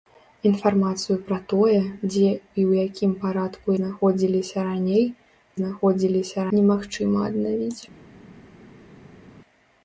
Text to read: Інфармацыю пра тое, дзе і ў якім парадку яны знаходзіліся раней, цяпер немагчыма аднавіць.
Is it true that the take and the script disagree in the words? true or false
true